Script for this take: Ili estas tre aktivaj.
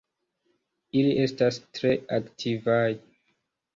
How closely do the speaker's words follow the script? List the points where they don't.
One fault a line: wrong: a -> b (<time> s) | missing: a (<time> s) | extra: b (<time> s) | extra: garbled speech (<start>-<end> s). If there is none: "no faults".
no faults